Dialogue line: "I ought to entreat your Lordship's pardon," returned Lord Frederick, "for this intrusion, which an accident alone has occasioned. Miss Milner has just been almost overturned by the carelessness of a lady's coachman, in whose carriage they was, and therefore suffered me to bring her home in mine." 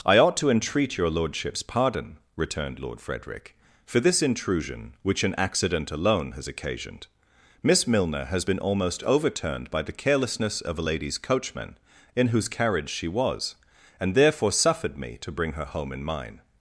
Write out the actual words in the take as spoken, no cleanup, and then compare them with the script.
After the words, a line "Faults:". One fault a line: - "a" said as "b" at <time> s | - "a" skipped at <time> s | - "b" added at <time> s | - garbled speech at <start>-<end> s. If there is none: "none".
"I ought to entreat your Lordship's pardon," returned Lord Frederick, "for this intrusion, which an accident alone has occasioned. Miss Milner has been almost overturned by the carelessness of a lady's coachman, in whose carriage she was, and therefore suffered me to bring her home in mine."
Faults:
- "just" skipped at 8.4 s
- "they" said as "she" at 12.9 s